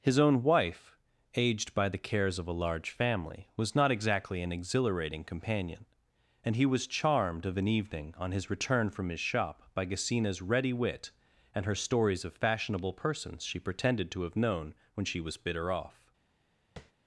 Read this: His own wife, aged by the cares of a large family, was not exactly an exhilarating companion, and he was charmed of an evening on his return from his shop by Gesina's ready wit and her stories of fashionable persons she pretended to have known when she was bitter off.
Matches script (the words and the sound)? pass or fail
fail